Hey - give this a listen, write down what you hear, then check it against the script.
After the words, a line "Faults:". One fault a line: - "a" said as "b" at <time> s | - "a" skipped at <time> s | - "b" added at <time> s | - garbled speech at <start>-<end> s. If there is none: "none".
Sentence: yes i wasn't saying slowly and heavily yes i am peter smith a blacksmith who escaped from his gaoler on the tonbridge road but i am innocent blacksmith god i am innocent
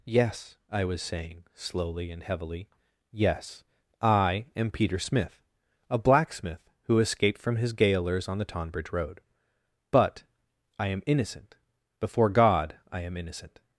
yes i was saying slowly and heavily yes i am peter smith a blacksmith who escaped from his gaolers on the tonbridge road but i am innocent before god i am innocent
Faults:
- "wasn't" said as "was" at 0.8 s
- "gaoler" said as "gaolers" at 7.7 s
- "blacksmith" said as "before" at 12.0 s